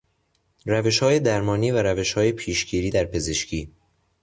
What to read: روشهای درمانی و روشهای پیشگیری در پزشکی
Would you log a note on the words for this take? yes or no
no